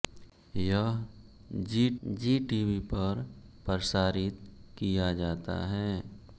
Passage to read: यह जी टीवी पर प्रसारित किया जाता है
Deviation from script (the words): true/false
true